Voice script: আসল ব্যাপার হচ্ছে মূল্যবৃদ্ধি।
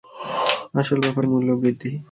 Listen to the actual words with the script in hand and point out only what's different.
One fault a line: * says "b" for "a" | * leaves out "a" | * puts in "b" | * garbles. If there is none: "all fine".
* leaves out "হচ্ছে"